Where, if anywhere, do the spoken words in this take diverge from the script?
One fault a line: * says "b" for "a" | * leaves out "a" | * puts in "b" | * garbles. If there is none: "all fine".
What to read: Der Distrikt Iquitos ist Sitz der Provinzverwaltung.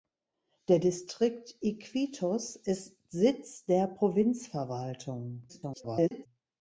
* garbles